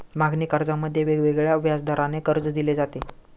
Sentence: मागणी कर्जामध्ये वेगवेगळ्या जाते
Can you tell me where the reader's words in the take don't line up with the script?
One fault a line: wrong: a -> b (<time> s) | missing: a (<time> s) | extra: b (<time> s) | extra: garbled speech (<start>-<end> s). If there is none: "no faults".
extra: व्याजदराने कर्ज दिले (1.6 s)